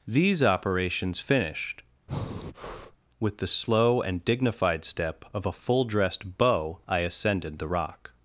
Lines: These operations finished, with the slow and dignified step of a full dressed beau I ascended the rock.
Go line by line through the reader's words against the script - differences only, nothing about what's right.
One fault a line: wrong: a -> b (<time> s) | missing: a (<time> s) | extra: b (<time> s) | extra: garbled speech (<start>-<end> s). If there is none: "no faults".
no faults